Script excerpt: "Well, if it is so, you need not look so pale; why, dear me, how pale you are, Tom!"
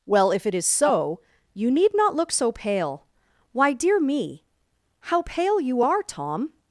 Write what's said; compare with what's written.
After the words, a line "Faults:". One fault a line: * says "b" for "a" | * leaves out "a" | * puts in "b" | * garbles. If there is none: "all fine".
"Well, if it is so, you need not look so pale; why, dear me, how pale you are, Tom!"
Faults:
all fine